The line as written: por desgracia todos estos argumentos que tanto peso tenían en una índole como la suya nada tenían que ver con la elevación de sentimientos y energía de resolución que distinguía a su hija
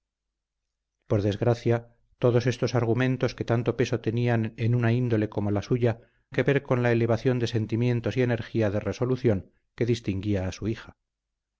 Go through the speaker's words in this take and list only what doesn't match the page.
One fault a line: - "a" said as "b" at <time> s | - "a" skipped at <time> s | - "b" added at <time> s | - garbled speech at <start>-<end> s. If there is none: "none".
- "nada tenían" skipped at 6.0 s